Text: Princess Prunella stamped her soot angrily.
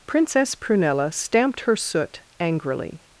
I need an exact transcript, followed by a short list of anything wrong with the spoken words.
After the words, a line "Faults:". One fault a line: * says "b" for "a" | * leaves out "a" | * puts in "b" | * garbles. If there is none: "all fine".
Princess Prunella stamped her soot angrily.
Faults:
all fine